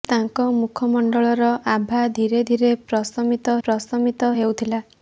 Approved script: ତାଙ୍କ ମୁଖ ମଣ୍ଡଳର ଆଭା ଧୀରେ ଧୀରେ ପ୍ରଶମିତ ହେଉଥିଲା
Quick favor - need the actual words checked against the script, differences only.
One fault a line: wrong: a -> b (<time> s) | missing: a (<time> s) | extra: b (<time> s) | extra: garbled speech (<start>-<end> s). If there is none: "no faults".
extra: ପ୍ରଶମିତ (3.6 s)